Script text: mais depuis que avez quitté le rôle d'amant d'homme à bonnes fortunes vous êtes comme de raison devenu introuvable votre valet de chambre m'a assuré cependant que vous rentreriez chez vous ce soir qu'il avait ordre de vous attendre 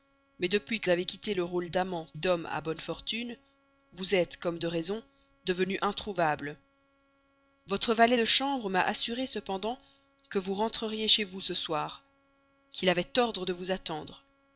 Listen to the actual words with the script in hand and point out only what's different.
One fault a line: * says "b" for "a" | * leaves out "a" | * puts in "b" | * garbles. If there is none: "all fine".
all fine